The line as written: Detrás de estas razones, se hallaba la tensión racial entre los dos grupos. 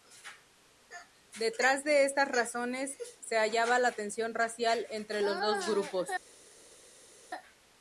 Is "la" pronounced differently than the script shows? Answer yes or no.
no